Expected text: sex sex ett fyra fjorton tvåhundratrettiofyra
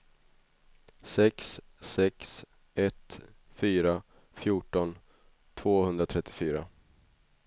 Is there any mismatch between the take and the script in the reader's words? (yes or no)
no